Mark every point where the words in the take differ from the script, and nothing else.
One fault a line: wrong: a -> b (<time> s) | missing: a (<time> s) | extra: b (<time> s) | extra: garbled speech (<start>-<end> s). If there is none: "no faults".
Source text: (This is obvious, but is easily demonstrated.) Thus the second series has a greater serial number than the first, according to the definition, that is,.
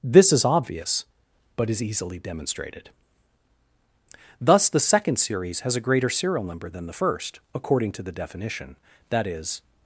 no faults